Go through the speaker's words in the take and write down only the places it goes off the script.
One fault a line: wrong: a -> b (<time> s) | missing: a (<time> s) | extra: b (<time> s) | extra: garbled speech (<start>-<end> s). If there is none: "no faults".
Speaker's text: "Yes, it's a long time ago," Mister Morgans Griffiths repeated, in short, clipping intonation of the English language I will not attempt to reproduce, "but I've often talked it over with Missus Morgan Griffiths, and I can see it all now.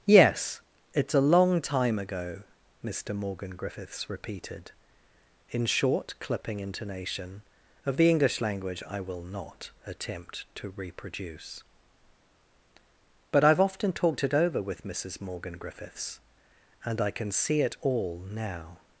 wrong: Morgans -> Morgan (3.1 s)